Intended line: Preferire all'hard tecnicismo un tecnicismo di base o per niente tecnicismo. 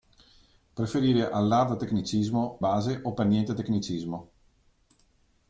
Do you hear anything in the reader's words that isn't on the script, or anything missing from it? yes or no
yes